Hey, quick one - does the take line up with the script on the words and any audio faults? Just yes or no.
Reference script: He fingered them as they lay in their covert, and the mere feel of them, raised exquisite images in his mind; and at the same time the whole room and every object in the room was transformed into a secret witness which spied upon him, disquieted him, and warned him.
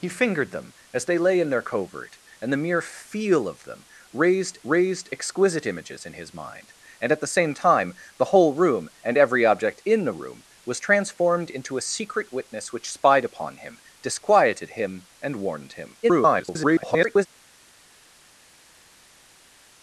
no